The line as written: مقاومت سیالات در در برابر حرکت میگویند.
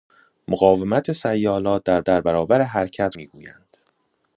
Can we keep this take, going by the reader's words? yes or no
yes